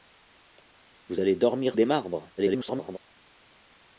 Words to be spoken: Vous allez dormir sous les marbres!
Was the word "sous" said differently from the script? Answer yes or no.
yes